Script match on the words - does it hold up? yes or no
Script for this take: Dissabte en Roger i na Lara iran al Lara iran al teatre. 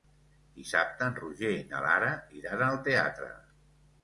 no